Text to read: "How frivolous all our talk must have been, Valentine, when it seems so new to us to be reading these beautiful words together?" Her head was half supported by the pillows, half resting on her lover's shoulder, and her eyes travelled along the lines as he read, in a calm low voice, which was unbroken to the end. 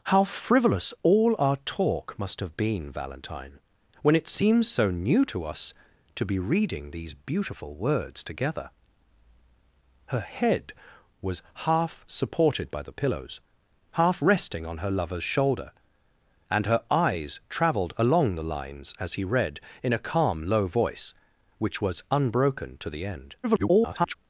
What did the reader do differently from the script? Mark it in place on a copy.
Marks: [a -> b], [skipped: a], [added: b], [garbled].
"How frivolous all our talk must have been, Valentine, when it seems so new to us to be reading these beautiful words together?" Her head was half supported by the pillows, half resting on her lover's shoulder, and her eyes travelled along the lines as he read, in a calm low voice, which was unbroken to the end. [garbled]